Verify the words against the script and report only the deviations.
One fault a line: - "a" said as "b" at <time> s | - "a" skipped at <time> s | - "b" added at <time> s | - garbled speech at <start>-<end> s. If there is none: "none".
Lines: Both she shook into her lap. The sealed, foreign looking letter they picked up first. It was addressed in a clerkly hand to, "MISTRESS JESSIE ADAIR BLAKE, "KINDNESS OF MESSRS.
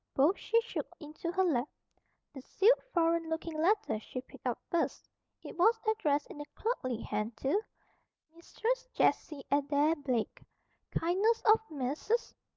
- "they" said as "she" at 4.0 s